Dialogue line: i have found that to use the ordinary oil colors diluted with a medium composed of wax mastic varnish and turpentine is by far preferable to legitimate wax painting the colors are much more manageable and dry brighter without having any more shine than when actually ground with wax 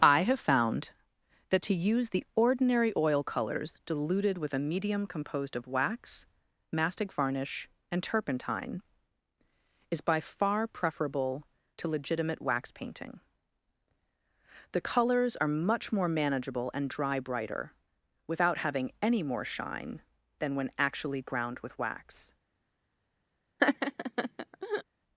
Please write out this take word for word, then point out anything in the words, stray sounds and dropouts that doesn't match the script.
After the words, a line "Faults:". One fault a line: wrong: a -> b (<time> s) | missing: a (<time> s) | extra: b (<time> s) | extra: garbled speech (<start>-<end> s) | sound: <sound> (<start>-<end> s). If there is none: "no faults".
i have found that to use the ordinary oil colors diluted with a medium composed of wax mastic varnish and turpentine is by far preferable to legitimate wax painting the colors are much more manageable and dry brighter without having any more shine than when actually ground with wax
Faults:
sound: laugh (23.6-24.8 s)